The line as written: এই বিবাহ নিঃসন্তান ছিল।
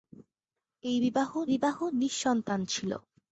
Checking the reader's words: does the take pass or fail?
fail